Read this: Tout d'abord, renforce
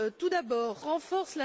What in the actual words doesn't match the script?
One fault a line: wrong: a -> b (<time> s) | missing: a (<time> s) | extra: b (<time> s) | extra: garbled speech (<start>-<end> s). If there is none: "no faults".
no faults